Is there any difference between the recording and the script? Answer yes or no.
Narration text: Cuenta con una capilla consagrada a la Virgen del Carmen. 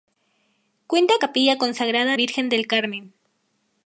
yes